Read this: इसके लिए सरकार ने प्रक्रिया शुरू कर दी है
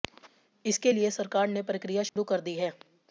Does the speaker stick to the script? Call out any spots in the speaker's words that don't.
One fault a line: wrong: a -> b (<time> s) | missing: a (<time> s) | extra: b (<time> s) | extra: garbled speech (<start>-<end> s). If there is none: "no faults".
no faults